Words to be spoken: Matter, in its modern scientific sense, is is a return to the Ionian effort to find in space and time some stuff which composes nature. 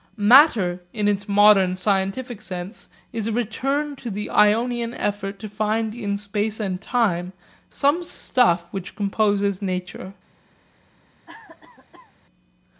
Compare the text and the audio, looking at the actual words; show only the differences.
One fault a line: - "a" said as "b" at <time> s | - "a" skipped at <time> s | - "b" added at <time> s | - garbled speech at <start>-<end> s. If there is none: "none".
- "is" skipped at 3.3 s